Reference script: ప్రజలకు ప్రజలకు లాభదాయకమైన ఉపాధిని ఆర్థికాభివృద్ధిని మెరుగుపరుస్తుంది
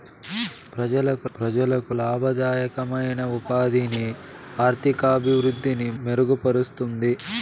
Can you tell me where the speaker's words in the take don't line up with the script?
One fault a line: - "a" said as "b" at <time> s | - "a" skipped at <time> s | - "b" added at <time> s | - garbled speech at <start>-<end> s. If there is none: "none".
none